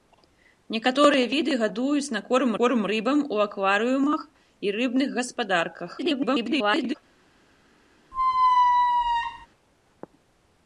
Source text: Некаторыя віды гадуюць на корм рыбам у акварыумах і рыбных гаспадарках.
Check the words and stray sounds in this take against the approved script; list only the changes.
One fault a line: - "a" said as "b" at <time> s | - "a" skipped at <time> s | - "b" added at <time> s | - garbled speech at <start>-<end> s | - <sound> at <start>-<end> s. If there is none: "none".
- "корм" added at 2.6 s
- garbled speech at 6.0-6.9 s
- squeak at 8.1-9.5 s